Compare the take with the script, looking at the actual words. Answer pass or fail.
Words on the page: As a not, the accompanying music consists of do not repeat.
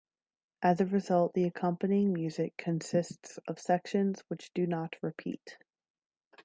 fail